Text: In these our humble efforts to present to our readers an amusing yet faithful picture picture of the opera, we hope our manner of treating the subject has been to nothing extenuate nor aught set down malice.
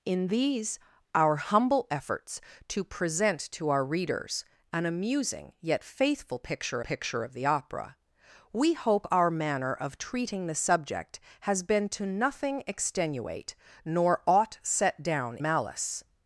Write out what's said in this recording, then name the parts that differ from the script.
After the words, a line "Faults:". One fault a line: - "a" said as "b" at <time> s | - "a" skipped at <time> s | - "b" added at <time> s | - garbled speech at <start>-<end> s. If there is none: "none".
In these our humble efforts to present to our readers an amusing yet faithful picture picture of the opera, we hope our manner of treating the subject has been to nothing extenuate nor aught set down malice.
Faults:
none